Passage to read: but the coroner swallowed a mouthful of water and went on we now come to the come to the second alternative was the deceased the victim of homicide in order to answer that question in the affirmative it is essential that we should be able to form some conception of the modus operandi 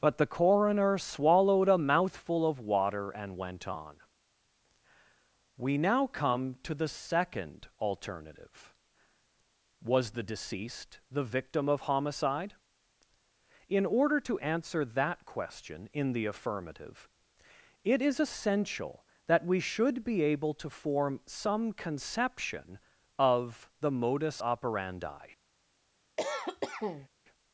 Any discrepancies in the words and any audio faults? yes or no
yes